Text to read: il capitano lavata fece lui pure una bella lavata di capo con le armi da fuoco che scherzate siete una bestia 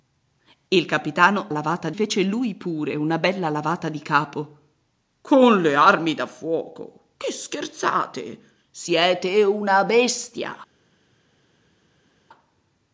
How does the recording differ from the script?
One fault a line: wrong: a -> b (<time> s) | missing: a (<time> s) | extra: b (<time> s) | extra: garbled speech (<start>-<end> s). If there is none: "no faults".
no faults